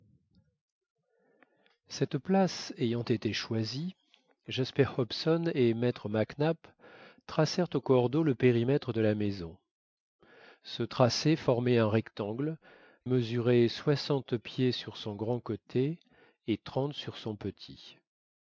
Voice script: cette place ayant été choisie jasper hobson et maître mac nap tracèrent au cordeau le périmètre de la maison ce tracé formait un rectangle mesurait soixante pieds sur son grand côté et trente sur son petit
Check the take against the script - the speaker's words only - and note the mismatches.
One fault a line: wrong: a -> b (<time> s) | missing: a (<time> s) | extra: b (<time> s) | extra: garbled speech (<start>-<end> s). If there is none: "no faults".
no faults